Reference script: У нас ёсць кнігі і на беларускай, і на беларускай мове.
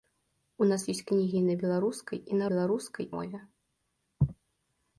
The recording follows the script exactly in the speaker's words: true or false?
true